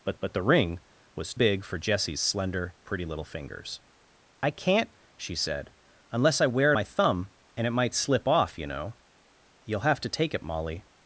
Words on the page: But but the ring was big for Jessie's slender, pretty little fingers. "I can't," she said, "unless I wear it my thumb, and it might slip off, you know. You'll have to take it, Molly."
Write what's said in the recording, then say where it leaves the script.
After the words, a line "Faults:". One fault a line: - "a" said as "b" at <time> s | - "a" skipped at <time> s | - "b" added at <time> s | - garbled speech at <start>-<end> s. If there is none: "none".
But but the ring was big for Jessie's slender, pretty little fingers. "I can't," she said, "unless I wear it my thumb, and it might slip off, you know. You'll have to take it, Molly."
Faults:
none